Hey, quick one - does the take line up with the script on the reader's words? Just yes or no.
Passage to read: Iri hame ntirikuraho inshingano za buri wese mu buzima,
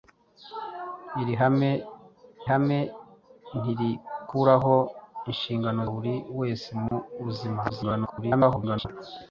no